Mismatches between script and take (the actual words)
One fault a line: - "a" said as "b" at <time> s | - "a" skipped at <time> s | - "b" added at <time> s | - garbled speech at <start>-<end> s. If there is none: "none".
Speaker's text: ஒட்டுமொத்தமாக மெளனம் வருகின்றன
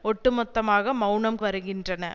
none